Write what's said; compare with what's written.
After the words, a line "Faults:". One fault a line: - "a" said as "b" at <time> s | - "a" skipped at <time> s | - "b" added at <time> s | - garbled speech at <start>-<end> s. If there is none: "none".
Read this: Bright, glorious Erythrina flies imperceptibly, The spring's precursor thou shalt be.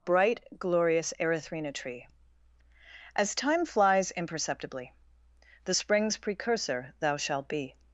Bright, glorious Erythrina tree! As time flies imperceptibly, The spring's precursor thou shalt be.
Faults:
- "tree As time" added at 1.7 s